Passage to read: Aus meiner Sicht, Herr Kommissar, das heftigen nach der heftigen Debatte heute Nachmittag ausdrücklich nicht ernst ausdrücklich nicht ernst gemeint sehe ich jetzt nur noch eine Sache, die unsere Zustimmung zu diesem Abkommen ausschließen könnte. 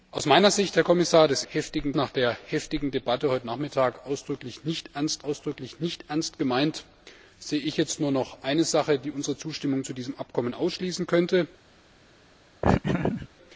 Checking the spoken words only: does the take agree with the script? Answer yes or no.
yes